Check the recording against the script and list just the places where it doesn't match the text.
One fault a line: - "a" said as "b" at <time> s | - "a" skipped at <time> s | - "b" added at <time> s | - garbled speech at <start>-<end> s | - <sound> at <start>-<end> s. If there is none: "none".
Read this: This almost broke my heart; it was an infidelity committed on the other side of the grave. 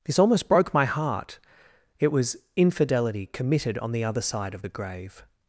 - "an" skipped at 2.4 s